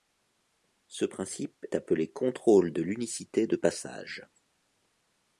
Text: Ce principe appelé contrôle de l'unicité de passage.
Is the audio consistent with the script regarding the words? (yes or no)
yes